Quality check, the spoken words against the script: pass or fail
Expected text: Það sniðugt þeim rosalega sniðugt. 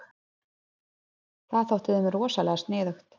fail